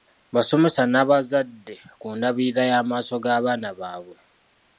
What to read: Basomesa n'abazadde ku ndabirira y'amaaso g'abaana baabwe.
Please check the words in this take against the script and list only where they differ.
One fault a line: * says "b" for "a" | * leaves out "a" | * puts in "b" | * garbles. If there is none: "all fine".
all fine